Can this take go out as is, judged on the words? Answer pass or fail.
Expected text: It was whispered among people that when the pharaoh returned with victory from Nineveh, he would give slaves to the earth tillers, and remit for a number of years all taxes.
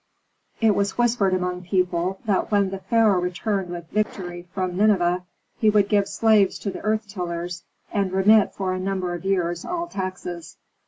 pass